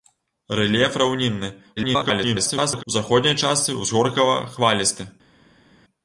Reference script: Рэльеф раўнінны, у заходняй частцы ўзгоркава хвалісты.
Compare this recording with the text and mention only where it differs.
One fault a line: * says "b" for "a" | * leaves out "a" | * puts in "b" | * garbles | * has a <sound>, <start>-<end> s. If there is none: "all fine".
* garbles